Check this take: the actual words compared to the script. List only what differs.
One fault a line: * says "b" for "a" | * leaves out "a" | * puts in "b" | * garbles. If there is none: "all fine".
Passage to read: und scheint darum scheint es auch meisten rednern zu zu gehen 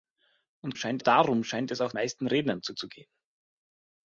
all fine